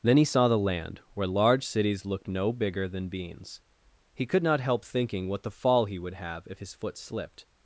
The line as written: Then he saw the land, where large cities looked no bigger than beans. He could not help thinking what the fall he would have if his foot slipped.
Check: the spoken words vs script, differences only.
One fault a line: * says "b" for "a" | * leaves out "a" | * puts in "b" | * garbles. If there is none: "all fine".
all fine